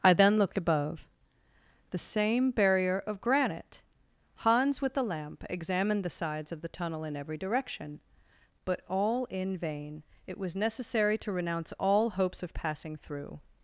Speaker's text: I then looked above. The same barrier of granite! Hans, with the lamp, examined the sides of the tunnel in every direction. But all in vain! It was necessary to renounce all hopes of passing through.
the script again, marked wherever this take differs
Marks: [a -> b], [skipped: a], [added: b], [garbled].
I then looked above. The same barrier of granite! Hans, with the lamp, examined the sides of the tunnel in every direction. But all in vain! It was necessary to renounce all hopes of passing through.